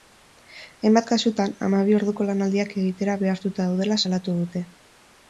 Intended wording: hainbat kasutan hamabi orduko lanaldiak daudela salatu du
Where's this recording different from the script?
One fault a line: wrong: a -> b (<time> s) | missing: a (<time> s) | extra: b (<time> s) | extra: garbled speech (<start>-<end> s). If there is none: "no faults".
extra: egitera behartuta (2.9 s)
wrong: du -> dute (4.4 s)